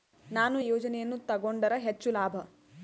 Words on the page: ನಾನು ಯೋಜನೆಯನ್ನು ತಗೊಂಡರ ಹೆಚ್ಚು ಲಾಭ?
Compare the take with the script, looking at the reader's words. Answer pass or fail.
pass